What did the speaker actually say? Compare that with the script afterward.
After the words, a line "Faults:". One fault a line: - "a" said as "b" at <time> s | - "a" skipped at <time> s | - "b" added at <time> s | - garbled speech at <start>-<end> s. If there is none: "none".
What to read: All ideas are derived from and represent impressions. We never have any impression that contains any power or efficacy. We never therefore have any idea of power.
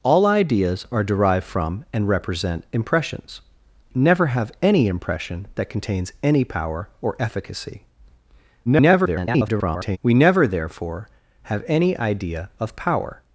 All ideas are derived from and represent impressions. Never have any impression that contains any power or efficacy. [garbled] We never therefore have any idea of power.
Faults:
- "We" skipped at 3.4 s
- garbled speech at 8.7-10.0 s